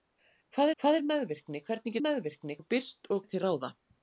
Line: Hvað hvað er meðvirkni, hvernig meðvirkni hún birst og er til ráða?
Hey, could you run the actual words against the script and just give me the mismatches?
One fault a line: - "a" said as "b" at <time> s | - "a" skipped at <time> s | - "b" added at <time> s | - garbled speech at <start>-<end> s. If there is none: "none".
none